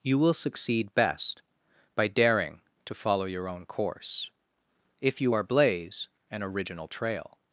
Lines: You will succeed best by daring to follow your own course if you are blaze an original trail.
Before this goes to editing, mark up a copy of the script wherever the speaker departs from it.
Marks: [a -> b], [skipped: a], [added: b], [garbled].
You will succeed best by daring to follow your own course if you are blaze an original trail.